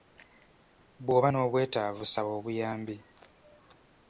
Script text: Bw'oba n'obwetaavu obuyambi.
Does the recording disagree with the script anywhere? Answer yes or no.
yes